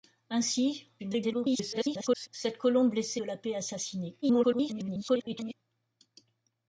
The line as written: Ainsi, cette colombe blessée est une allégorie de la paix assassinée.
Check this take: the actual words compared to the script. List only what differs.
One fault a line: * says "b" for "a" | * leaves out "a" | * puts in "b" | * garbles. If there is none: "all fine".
* garbles
* leaves out "est une allégorie"
* garbles